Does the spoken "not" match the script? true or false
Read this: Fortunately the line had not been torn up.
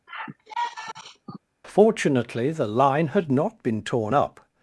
true